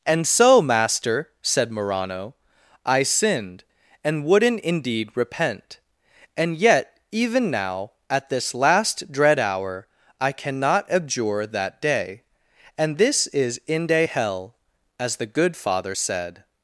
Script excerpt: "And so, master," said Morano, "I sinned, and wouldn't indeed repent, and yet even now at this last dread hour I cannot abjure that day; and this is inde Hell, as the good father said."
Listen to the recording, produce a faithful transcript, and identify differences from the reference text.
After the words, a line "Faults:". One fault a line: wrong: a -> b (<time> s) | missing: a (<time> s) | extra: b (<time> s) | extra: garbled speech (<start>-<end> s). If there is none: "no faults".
"And so, master," said Morano, "I sinned, and wouldn't indeed repent, and yet even now at this last dread hour I cannot abjure that day; and this is inde Hell, as the good father said."
Faults:
no faults